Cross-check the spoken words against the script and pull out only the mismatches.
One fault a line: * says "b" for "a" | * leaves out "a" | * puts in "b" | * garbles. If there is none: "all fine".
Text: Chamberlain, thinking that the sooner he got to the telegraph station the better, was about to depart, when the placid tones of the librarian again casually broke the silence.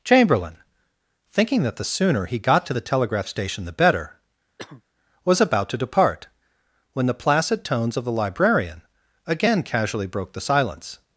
all fine